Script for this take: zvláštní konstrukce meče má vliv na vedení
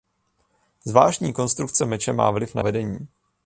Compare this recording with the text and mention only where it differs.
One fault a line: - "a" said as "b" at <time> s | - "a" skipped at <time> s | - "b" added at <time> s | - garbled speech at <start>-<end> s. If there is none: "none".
none